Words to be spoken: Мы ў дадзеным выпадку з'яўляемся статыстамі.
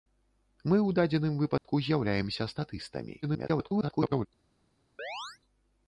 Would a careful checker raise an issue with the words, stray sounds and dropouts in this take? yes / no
yes